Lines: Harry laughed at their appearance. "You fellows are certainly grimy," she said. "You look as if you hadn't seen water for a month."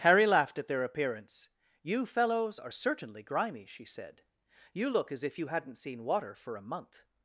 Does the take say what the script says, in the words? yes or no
yes